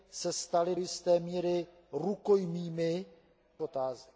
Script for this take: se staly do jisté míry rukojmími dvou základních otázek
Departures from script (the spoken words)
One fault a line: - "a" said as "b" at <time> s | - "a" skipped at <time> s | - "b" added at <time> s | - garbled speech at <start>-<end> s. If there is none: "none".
- "do" skipped at 0.8 s
- "dvou základních" skipped at 3.1 s